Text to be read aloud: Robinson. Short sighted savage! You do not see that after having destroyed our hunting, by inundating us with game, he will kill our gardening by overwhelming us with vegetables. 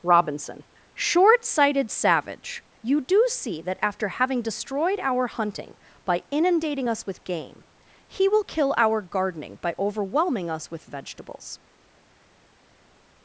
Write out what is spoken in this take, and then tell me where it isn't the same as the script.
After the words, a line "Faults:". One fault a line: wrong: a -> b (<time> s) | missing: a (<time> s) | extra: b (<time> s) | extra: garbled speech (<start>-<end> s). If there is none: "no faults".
Robinson. Short sighted savage! You do see that after having destroyed our hunting, by inundating us with game, he will kill our gardening by overwhelming us with vegetables.
Faults:
missing: not (3.2 s)